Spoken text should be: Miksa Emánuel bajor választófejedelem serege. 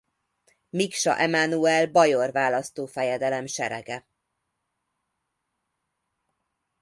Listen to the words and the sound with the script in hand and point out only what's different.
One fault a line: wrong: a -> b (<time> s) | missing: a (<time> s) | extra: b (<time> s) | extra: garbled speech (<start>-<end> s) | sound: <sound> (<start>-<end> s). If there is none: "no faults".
no faults